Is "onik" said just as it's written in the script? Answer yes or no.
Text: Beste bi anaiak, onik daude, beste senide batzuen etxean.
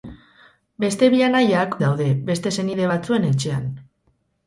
no